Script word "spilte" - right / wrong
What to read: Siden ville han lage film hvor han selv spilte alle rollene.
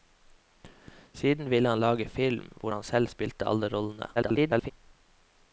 right